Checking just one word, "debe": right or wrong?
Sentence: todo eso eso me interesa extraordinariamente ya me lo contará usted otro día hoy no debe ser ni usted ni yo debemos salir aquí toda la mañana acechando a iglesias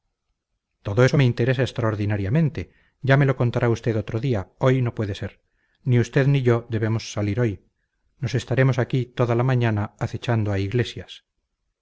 wrong